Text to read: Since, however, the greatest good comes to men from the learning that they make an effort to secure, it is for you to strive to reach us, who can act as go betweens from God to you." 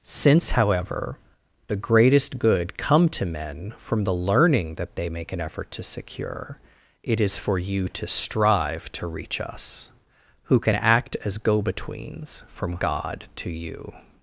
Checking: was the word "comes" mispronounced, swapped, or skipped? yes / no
yes